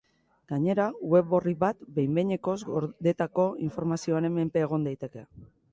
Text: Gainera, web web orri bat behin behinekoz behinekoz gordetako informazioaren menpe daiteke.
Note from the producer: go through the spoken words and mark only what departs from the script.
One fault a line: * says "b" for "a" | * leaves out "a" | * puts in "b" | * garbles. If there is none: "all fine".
* leaves out "web"
* leaves out "behinekoz"
* puts in "egon"